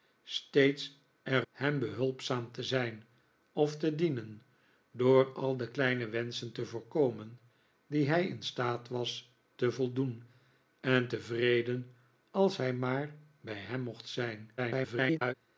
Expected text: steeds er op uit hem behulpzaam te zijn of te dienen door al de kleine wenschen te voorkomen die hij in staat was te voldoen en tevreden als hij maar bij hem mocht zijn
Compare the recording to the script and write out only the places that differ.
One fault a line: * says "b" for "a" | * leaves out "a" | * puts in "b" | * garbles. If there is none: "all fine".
* leaves out "op uit"
* garbles